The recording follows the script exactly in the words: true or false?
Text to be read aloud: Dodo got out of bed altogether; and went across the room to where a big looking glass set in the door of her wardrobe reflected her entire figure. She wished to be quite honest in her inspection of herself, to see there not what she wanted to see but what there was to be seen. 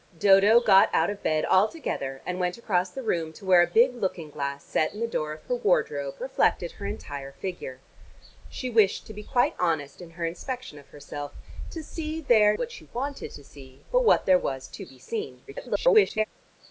false